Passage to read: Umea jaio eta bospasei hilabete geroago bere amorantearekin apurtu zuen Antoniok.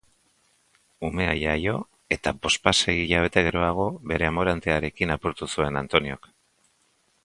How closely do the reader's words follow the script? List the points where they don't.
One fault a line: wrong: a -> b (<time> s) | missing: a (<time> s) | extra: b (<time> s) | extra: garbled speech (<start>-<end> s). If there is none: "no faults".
no faults